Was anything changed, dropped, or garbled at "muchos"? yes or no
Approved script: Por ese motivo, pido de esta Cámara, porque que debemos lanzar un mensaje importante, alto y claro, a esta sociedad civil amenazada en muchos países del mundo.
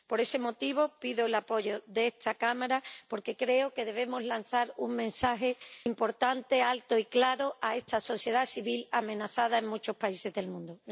no